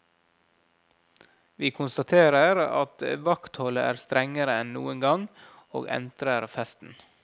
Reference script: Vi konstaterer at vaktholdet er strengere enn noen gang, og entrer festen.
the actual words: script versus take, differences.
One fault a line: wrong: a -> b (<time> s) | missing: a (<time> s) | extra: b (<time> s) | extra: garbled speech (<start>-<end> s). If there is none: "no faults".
no faults